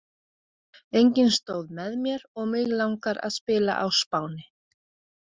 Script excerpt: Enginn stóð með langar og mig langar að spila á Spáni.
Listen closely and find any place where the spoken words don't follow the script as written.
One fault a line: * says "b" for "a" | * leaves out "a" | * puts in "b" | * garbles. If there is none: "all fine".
* says "mér" for "langar"